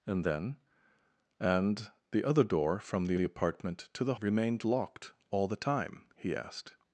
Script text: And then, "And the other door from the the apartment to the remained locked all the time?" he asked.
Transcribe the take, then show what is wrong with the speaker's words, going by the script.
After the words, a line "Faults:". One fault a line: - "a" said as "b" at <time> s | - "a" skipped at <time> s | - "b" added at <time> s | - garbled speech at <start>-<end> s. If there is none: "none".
And then, "And the other door from the the apartment to the remained locked all the time?" he asked.
Faults:
none